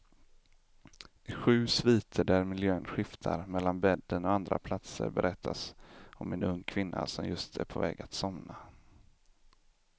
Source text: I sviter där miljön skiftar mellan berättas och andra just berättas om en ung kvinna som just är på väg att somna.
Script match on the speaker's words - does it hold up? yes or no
no